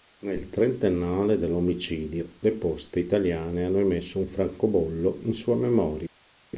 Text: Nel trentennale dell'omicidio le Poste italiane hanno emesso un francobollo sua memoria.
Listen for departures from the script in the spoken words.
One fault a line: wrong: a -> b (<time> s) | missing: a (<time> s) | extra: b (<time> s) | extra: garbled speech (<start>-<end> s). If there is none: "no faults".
extra: in (5.2 s)